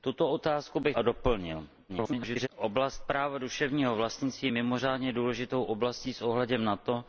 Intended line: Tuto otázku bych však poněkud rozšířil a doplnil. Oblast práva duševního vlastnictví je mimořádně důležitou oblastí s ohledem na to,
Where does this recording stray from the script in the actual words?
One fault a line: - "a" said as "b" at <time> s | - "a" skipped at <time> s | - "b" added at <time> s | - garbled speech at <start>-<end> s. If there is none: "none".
- "však poněkud rozšířil" skipped at 1.0 s
- garbled speech at 1.9-2.5 s